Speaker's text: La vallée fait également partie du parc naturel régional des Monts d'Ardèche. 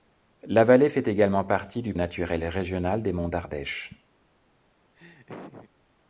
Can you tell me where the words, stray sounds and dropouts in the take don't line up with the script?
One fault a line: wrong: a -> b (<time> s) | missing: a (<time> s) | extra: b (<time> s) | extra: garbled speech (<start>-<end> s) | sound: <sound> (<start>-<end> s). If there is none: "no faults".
missing: parc (1.9 s)
sound: laugh (4.9-5.7 s)